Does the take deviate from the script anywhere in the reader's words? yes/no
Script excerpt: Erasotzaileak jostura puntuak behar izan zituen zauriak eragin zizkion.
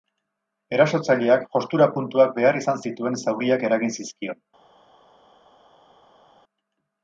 no